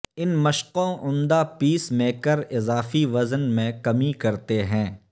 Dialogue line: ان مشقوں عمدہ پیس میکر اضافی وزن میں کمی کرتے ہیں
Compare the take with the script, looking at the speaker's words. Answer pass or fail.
pass